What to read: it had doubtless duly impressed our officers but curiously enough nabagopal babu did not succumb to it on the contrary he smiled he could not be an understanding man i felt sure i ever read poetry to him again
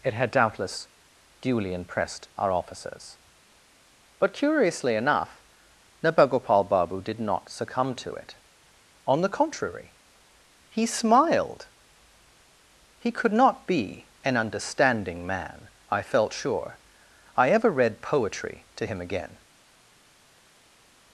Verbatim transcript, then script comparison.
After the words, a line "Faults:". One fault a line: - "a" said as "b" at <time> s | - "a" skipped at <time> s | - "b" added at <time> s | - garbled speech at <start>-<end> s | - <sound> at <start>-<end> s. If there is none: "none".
it had doubtless duly impressed our officers but curiously enough nabagopal babu did not succumb to it on the contrary he smiled he could not be an understanding man i felt sure i ever read poetry to him again
Faults:
none